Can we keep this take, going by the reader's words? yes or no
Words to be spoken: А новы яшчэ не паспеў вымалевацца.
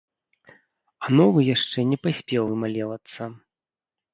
yes